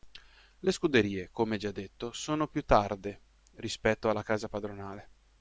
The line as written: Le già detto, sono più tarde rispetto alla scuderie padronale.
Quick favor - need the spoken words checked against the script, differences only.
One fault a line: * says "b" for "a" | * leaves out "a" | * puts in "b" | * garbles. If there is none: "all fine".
* puts in "scuderie come"
* says "casa" for "scuderie"